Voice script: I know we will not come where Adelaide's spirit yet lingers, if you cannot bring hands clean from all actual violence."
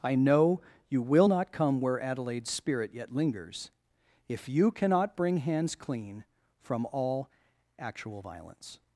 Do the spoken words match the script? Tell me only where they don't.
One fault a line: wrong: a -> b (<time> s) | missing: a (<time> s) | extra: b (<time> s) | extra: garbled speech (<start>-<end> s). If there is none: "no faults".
wrong: we -> you (0.9 s)